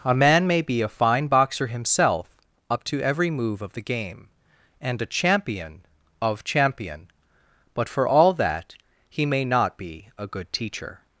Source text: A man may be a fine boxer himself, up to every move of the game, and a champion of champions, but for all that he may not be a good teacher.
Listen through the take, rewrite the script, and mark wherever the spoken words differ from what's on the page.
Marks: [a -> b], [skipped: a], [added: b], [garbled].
A man may be a fine boxer himself, up to every move of the game, and a champion of [champions, -> champion] but for all that he may not be a good teacher.